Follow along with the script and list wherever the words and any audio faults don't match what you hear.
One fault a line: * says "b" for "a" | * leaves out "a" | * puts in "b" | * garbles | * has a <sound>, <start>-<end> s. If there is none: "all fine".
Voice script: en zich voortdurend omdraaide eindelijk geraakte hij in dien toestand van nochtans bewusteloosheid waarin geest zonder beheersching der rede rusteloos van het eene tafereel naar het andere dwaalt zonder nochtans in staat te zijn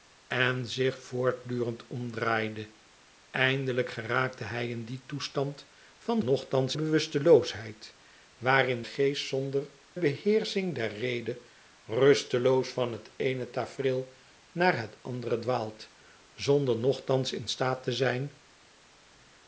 all fine